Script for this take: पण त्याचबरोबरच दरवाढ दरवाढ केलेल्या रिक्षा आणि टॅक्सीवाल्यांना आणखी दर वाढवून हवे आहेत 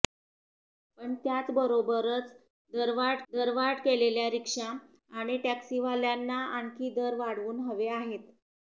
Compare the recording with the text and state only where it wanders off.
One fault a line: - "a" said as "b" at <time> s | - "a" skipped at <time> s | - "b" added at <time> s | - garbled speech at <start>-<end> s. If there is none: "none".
none